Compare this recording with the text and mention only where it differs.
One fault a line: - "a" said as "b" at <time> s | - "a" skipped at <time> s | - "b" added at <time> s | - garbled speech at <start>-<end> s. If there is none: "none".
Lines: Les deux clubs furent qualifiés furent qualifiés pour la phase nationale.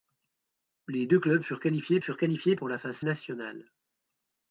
none